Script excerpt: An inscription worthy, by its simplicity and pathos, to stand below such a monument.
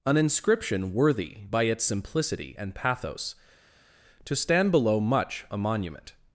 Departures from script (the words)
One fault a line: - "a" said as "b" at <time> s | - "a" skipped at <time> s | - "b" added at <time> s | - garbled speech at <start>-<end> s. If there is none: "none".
- "such" said as "much" at 5.0 s